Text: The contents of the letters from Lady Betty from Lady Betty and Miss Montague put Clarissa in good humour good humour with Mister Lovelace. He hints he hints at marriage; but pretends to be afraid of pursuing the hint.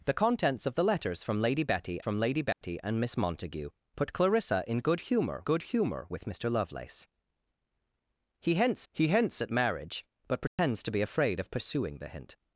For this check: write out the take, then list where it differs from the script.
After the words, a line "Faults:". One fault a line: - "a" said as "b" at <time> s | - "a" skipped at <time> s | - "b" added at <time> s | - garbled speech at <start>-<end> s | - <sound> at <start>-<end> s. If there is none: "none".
The contents of the letters from Lady Betty from Lady Betty and Miss Montague put Clarissa in good humour good humour with Mister Lovelace. He hints he hints at marriage; but pretends to be afraid of pursuing the hint.
Faults:
- dropout at 2.5-2.6 s
- dropout at 10.5-10.6 s